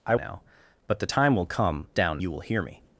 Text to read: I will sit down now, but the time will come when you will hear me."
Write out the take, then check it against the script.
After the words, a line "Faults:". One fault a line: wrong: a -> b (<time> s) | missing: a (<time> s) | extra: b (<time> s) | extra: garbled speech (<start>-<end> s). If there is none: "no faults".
I now, but the time will come down you will hear me."
Faults:
missing: will sit down (0.1 s)
wrong: when -> down (1.9 s)